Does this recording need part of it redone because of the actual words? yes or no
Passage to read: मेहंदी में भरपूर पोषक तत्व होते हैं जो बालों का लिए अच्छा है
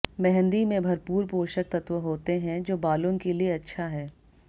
yes